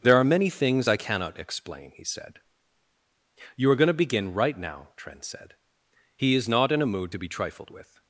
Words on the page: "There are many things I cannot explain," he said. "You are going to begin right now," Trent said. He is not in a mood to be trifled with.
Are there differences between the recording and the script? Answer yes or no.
no